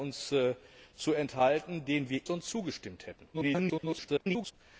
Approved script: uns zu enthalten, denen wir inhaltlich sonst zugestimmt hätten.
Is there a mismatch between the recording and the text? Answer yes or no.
yes